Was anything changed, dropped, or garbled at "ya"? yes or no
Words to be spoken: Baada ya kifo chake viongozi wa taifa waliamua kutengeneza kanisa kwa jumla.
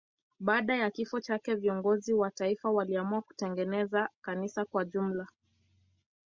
no